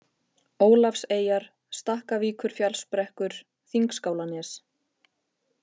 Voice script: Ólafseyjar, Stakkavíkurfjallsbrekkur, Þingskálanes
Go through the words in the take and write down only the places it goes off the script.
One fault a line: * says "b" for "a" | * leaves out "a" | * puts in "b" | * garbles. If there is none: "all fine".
all fine